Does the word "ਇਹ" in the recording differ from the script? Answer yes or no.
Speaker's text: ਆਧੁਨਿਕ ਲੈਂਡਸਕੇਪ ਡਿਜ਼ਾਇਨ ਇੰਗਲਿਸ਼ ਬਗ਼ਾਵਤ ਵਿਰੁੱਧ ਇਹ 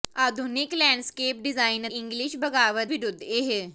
no